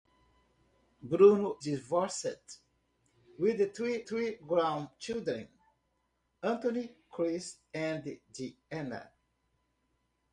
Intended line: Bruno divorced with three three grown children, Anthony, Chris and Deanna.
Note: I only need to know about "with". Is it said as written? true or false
true